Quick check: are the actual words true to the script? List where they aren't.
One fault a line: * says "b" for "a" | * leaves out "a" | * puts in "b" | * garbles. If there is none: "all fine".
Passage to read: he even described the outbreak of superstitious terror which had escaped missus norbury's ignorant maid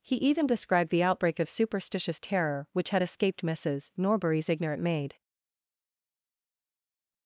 all fine